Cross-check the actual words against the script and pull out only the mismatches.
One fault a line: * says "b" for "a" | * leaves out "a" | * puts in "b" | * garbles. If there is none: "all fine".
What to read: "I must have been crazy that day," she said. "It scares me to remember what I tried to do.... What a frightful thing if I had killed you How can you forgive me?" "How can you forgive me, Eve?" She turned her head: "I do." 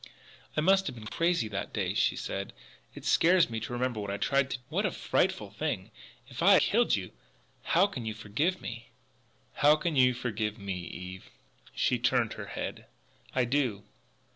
* leaves out "do"
* leaves out "had"